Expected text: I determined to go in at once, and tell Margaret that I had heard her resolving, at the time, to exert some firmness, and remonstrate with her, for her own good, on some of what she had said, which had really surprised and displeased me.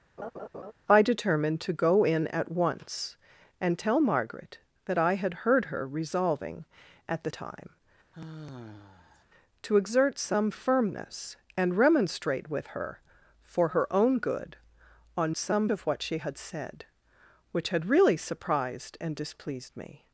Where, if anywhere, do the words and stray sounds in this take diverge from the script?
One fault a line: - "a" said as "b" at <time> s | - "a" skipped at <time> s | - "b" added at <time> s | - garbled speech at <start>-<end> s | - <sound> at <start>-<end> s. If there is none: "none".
- laugh at 0.2-0.7 s
- sigh at 8.1-9.2 s